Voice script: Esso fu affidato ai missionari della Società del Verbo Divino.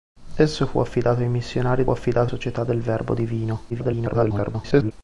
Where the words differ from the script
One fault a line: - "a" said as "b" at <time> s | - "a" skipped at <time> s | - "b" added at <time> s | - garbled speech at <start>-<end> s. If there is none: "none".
- "della" said as "affidato" at 1.9 s
- garbled speech at 3.7-4.9 s